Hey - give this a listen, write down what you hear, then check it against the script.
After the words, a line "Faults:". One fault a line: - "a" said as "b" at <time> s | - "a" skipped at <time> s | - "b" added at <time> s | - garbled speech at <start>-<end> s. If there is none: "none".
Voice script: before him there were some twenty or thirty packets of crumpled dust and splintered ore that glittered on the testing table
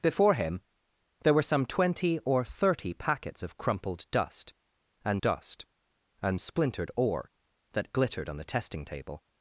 before him there were some twenty or thirty packets of crumpled dust and dust and splintered ore that glittered on the testing table
Faults:
- "dust and" added at 5.2 s